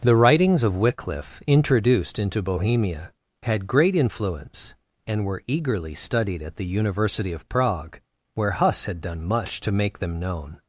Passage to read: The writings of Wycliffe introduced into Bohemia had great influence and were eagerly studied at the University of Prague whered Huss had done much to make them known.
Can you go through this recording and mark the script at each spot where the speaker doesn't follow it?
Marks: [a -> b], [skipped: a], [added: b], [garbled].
The writings of Wycliffe introduced into Bohemia had great influence and were eagerly studied at the University of Prague [whered -> where] Huss had done much to make them known.